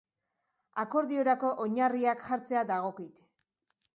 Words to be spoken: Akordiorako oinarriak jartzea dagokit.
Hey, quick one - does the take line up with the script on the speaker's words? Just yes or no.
yes